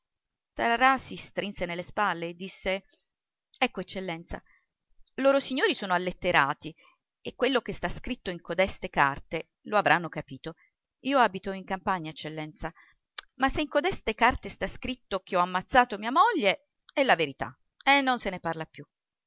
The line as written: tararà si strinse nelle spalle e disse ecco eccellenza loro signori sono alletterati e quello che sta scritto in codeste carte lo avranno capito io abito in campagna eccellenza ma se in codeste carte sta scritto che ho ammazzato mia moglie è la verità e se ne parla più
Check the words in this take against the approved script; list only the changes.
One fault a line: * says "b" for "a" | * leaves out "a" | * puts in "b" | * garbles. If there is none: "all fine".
* puts in "non"